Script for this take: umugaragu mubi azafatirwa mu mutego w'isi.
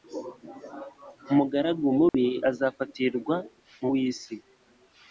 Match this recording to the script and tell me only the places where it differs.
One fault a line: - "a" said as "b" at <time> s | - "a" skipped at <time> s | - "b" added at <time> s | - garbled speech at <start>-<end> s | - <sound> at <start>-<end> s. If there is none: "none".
- dropout at 2.1-2.1 s
- "mutego" skipped at 3.9 s